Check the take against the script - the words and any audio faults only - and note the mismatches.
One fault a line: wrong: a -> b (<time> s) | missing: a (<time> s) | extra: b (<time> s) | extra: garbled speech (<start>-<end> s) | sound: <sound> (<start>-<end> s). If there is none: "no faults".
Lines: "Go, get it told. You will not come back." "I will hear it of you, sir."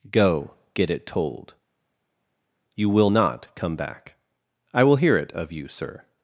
no faults